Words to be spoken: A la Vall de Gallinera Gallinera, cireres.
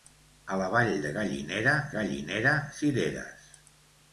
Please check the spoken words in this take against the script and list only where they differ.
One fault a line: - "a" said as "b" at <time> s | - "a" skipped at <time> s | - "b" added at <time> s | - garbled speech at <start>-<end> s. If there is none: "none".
none